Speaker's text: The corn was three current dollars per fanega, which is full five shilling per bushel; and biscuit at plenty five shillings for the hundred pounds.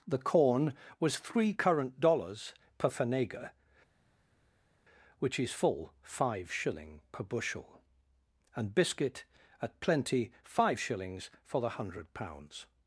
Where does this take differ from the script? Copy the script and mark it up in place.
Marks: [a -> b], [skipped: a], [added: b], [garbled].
The corn was three current dollars per fanega, which is full five shilling per bushel; and biscuit at plenty five shillings for the hundred pounds.